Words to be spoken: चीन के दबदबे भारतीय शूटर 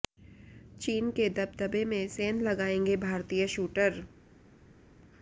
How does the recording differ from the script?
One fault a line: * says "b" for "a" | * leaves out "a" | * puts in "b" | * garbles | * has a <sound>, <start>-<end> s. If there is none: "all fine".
* puts in "में सेंध लगाएंगे"